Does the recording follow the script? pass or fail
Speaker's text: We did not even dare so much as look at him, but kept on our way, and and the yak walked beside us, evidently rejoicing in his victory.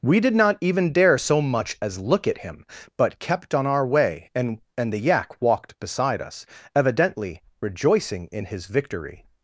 pass